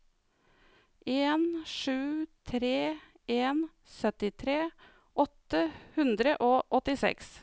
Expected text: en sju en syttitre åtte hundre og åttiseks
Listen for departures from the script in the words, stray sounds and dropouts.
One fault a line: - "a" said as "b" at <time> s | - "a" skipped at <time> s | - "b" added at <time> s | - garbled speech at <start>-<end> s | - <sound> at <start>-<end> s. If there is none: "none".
- "tre" added at 2.4 s